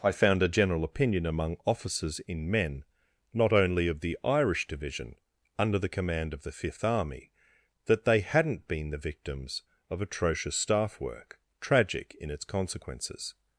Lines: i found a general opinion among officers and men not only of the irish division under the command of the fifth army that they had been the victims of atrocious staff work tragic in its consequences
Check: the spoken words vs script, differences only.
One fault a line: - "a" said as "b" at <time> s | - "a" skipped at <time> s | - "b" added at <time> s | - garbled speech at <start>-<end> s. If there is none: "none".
- "and" said as "in" at 2.2 s
- "had" said as "hadn't" at 8.2 s